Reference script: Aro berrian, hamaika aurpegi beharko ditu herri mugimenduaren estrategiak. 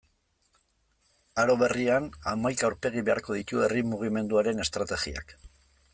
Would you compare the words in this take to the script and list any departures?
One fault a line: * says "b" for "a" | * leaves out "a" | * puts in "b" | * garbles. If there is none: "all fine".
all fine